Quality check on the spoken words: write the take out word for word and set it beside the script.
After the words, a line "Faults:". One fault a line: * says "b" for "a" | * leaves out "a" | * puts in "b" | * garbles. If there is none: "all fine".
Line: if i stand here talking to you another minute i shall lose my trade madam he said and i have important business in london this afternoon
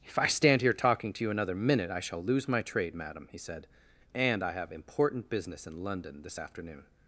if i stand here talking to you another minute i shall lose my trade madam he said and i have important business in london this afternoon
Faults:
all fine